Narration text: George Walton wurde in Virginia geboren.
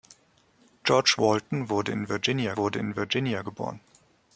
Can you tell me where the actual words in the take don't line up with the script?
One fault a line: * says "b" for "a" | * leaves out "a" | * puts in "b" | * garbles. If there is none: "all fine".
* puts in "wurde in Virginia"